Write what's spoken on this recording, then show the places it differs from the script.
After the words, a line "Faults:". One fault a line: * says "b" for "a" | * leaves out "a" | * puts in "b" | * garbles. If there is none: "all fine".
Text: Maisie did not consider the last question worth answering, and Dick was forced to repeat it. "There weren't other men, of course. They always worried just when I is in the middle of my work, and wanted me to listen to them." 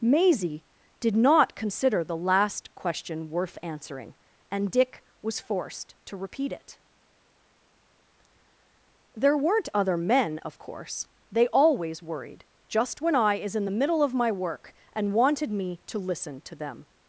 Maisie did not consider the last question worth answering, and Dick was forced to repeat it. "There weren't other men, of course. They always worried just when I is in the middle of my work, and wanted me to listen to them."
Faults:
all fine